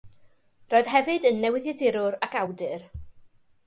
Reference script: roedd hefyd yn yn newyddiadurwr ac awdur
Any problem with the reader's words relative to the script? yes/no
yes